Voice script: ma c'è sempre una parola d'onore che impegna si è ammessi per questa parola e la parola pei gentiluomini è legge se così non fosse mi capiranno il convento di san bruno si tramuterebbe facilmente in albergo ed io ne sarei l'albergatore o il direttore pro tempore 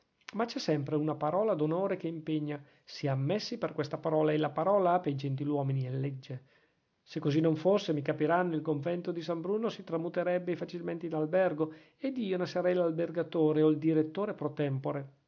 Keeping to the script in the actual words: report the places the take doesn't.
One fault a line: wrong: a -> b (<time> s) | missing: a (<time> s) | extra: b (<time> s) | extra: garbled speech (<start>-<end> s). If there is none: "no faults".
no faults